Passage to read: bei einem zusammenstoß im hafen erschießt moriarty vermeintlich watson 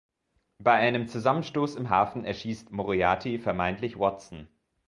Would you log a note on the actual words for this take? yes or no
no